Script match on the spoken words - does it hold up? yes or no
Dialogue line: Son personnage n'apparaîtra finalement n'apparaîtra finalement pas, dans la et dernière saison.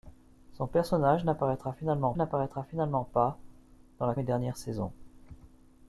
yes